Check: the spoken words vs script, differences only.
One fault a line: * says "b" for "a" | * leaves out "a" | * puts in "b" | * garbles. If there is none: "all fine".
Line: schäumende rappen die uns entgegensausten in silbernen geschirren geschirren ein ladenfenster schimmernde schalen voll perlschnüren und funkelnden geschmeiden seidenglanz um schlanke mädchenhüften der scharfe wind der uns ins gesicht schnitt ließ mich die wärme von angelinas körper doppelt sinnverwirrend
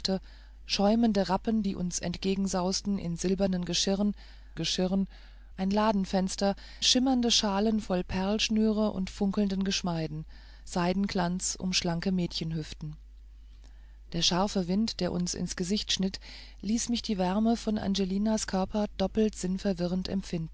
all fine